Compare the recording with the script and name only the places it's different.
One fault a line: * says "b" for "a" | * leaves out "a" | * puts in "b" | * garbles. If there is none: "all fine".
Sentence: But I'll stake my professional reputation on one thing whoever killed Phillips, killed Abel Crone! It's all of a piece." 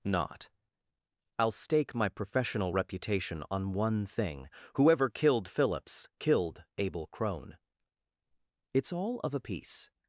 * says "Not" for "But"